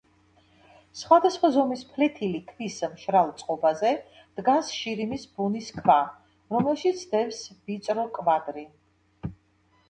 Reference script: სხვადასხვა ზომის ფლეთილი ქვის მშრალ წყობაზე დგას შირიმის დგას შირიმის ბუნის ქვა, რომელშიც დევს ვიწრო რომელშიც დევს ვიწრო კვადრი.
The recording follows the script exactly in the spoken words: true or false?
false